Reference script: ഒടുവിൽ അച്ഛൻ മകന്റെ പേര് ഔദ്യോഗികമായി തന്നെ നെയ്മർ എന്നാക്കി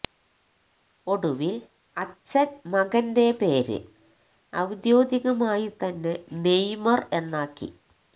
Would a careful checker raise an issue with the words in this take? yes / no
no